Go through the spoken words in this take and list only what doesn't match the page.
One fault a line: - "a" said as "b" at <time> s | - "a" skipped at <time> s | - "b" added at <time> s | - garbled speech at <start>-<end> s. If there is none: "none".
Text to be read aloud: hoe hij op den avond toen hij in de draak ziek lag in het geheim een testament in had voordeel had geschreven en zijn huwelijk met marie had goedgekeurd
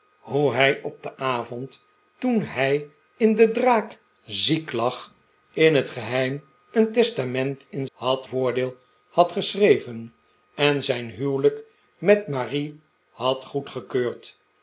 none